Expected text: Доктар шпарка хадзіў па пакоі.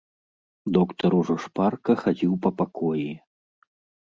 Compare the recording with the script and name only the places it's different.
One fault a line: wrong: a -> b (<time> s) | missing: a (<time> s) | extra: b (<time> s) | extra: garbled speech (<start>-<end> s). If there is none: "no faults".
extra: ужо (1.2 s)